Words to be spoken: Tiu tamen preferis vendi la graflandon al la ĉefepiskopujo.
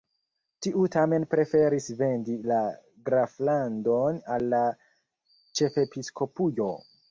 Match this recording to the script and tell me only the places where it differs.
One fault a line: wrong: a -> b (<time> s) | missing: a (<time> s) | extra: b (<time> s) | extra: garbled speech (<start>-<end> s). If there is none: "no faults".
no faults